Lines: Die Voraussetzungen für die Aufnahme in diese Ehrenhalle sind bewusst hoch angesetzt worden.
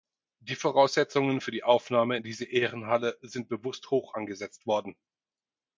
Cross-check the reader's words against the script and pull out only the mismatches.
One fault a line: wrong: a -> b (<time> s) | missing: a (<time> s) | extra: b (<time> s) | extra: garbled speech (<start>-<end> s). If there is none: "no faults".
no faults